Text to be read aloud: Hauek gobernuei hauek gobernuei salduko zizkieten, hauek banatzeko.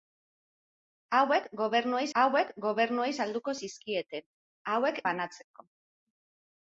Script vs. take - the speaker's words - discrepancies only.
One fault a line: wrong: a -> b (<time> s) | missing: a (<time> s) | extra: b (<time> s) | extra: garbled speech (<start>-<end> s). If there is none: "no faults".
no faults